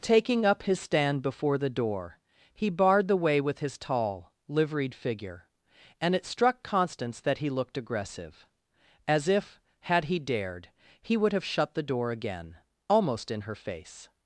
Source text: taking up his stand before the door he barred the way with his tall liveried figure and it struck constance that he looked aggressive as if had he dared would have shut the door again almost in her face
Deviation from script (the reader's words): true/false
true